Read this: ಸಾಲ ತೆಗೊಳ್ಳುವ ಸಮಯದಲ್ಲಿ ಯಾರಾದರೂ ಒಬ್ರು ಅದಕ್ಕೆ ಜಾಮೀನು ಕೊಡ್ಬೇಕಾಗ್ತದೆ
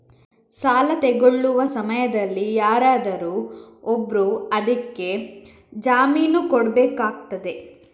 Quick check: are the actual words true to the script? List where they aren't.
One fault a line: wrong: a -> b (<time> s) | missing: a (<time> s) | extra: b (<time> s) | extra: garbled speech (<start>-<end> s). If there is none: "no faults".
no faults